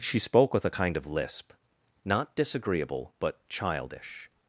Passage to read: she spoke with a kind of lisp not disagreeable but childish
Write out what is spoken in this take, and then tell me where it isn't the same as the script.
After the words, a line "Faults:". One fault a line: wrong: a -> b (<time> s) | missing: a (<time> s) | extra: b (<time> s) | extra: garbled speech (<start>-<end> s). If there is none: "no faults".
she spoke with a kind of lisp not disagreeable but childish
Faults:
no faults